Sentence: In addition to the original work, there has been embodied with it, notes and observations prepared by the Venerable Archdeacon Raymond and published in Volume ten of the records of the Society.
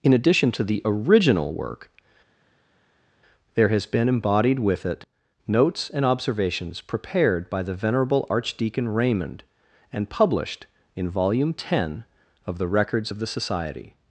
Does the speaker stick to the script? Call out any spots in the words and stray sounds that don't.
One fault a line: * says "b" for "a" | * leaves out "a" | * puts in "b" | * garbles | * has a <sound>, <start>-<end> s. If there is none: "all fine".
all fine